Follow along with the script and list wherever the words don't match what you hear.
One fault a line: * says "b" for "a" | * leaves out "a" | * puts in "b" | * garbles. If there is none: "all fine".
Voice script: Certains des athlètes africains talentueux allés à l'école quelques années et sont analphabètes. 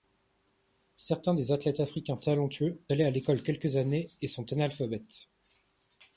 all fine